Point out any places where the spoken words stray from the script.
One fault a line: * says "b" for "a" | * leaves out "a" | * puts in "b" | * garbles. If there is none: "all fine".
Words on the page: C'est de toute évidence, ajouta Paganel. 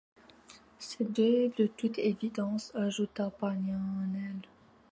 all fine